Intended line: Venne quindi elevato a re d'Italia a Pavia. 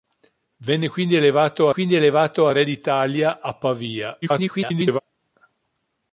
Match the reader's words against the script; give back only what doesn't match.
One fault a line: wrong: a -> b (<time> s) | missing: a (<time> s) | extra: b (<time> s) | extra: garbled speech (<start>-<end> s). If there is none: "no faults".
extra: quindi elevato (1.7 s)
extra: garbled speech (4.2-5.0 s)